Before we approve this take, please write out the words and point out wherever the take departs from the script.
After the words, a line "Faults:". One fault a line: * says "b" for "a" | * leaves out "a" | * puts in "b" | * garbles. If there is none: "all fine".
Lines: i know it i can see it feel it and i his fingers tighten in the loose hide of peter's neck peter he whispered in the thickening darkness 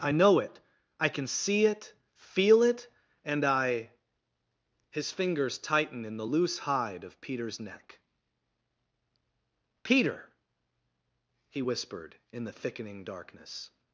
i know it i can see it feel it and i his fingers tighten in the loose hide of peter's neck peter he whispered in the thickening darkness
Faults:
all fine